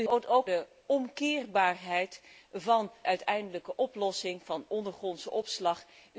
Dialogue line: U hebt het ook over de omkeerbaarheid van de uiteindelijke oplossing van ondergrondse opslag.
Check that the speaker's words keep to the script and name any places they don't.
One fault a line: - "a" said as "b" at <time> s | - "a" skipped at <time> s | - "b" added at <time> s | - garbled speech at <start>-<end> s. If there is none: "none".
- "hebt" skipped at 0.1 s
- "over" skipped at 0.5 s
- "de" skipped at 2.9 s